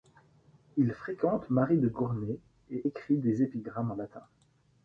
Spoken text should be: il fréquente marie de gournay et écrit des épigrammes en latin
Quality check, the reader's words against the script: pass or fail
pass